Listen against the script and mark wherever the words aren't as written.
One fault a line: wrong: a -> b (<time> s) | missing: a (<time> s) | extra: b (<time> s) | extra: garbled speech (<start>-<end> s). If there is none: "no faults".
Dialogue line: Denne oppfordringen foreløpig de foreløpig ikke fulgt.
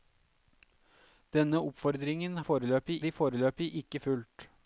no faults